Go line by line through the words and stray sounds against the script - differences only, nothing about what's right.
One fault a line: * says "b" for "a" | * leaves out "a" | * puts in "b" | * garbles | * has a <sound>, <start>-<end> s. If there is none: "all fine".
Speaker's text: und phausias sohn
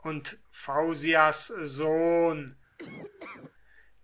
* has a laugh, 2.8-3.5 s